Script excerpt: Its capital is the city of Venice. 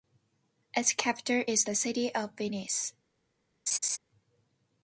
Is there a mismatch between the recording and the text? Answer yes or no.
no